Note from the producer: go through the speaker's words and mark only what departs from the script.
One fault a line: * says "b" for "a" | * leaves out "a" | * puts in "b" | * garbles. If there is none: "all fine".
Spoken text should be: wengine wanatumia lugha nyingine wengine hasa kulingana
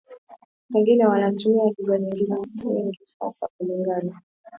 * says "nyingi" for "wengine"